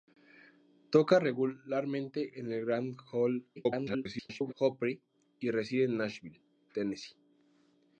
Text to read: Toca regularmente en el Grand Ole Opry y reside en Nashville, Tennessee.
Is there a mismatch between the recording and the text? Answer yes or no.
yes